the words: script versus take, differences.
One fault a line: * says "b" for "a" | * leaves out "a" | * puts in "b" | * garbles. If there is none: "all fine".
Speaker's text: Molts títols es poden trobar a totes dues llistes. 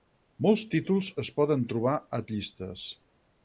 * leaves out "totes dues"